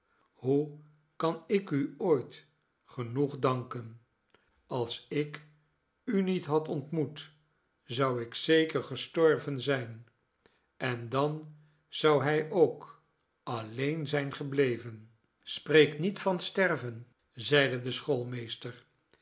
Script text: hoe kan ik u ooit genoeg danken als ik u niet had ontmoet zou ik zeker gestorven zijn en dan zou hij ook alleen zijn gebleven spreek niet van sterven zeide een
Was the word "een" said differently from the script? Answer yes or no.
yes